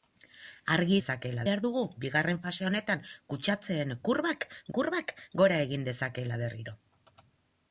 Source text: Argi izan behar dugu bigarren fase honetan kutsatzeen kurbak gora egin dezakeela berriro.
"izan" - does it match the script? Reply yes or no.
no